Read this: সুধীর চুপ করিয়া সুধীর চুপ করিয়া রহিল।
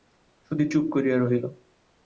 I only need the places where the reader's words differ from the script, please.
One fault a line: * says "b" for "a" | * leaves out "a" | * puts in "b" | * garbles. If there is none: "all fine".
* leaves out "সুধীর চুপ করিয়া"